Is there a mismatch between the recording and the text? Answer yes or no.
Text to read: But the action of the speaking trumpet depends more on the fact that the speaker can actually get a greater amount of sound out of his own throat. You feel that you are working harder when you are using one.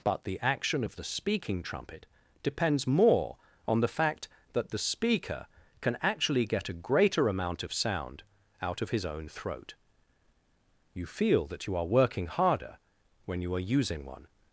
no